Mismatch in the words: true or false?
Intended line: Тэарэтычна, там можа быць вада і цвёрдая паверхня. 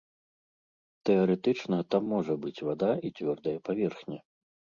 false